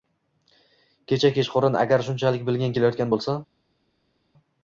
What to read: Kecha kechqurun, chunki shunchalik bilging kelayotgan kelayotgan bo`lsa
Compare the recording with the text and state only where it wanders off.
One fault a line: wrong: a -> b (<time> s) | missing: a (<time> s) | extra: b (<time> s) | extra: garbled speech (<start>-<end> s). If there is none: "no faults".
wrong: chunki -> agar (1.9 s)
missing: kelayotgan (3.1 s)